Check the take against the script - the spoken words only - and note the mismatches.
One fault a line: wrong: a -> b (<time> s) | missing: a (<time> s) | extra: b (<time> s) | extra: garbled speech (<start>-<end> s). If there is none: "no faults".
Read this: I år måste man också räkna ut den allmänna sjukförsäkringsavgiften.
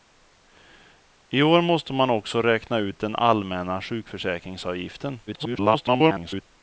extra: garbled speech (5.3-6.4 s)